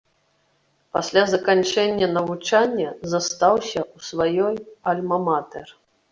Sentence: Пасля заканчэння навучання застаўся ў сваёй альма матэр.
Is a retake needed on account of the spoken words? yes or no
no